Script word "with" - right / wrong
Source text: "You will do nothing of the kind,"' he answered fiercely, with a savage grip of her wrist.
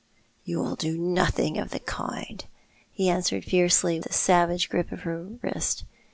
wrong